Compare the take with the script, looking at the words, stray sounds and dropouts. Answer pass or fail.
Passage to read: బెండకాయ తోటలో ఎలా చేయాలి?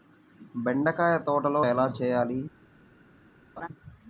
fail